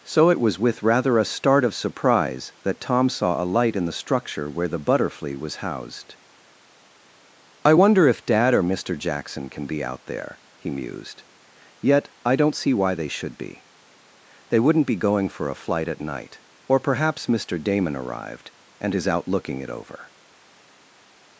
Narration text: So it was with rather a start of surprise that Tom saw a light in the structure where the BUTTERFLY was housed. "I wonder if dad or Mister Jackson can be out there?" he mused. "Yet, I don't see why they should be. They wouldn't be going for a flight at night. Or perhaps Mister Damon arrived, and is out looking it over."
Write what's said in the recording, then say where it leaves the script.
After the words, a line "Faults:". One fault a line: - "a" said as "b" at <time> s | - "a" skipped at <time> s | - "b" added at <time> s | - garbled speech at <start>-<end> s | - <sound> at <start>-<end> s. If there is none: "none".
So it was with rather a start of surprise that Tom saw a light in the structure where the BUTTERFLY was housed. "I wonder if dad or Mister Jackson can be out there?" he mused. "Yet, I don't see why they should be. They wouldn't be going for a flight at night. Or perhaps Mister Damon arrived, and is out looking it over."
Faults:
none